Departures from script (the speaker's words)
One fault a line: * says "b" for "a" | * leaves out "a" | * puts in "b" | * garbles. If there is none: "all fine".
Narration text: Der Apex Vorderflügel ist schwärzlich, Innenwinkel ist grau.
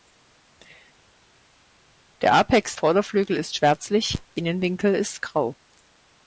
all fine